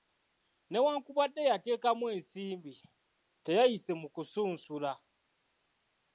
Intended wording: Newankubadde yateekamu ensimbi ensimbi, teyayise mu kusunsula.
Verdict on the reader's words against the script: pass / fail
fail